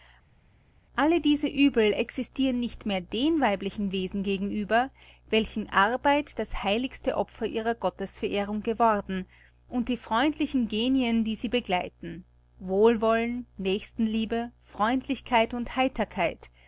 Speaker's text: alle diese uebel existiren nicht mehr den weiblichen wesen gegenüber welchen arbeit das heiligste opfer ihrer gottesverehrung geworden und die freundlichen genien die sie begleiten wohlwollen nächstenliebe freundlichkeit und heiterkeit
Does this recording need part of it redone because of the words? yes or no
no